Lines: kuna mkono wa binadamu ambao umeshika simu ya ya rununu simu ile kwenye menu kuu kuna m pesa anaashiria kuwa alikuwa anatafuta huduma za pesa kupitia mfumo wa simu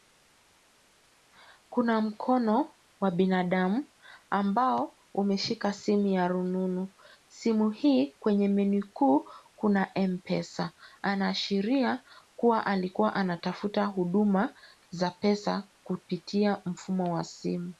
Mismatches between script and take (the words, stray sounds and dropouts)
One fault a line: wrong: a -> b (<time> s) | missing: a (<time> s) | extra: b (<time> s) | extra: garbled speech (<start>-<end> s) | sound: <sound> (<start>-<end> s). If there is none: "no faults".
missing: ya (6.3 s)
wrong: ile -> hii (7.7 s)